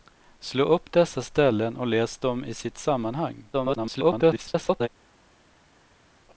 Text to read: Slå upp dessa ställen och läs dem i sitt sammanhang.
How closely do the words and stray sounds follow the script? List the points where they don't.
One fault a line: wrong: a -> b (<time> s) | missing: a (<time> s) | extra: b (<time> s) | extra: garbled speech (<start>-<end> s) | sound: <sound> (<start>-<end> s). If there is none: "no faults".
extra: garbled speech (3.5-4.9 s)